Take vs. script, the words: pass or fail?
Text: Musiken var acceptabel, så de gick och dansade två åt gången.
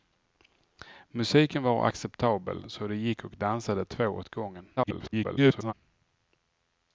fail